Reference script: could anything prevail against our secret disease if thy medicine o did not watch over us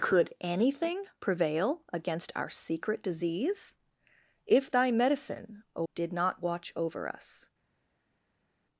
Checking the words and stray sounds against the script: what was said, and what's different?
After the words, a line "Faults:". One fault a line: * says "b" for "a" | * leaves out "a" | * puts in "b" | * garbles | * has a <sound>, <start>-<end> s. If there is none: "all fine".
could anything prevail against our secret disease if thy medicine o did not watch over us
Faults:
all fine